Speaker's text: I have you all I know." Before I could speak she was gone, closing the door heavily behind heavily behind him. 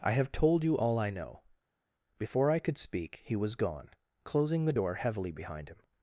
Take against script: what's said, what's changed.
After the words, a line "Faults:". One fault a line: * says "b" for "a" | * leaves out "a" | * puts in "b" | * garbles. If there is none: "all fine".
I have told you all I know." Before I could speak he was gone, closing the door heavily behind him.
Faults:
* puts in "told"
* says "he" for "she"
* leaves out "heavily behind"